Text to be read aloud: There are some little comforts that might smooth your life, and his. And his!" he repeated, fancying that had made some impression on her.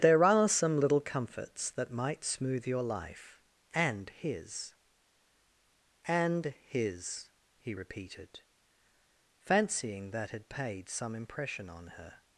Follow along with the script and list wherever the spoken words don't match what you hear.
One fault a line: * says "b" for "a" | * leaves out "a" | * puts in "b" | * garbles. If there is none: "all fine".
* says "paid" for "made"